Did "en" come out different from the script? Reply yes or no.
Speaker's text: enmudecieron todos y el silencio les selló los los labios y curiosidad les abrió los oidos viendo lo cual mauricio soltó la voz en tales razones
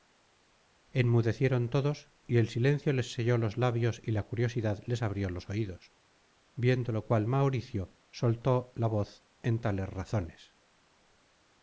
no